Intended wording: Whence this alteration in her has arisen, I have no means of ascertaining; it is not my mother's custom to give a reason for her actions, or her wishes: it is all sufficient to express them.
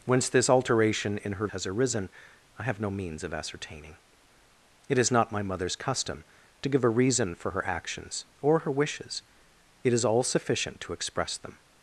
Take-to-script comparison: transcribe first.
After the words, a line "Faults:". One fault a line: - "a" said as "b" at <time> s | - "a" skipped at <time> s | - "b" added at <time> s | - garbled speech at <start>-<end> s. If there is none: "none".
Whence this alteration in her has arisen, I have no means of ascertaining; it is not my mother's custom to give a reason for her actions, or her wishes: it is all sufficient to express them.
Faults:
none